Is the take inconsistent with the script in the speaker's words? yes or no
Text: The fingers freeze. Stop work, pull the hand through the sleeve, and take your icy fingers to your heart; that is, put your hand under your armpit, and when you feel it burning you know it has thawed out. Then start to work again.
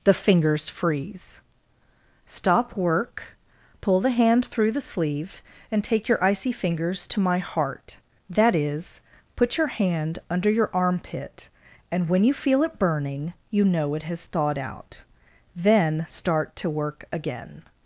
yes